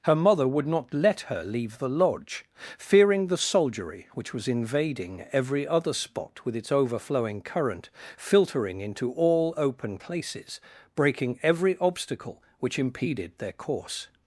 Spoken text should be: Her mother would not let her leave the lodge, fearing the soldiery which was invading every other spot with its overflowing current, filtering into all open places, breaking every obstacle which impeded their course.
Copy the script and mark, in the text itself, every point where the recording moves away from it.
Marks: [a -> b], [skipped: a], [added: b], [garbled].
Her mother would not let her leave the lodge, fearing the soldiery which was invading every other spot with its overflowing current, filtering into all open places, breaking every obstacle which impeded their course.